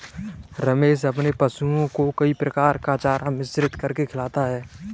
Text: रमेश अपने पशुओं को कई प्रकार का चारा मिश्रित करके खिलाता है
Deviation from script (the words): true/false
false